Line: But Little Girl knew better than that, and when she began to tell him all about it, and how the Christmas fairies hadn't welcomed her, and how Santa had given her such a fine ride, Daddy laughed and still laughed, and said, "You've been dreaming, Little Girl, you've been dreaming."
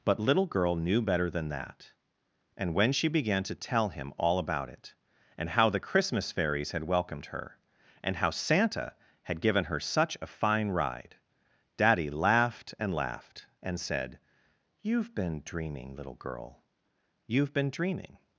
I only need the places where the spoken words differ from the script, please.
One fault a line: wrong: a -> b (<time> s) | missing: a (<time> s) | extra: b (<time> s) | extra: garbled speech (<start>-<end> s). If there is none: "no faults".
wrong: hadn't -> had (6.7 s)
missing: still (12.9 s)